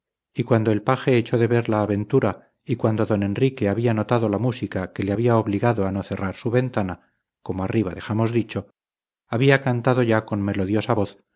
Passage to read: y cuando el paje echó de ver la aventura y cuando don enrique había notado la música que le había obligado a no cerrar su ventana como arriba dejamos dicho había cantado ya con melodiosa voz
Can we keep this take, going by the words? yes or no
yes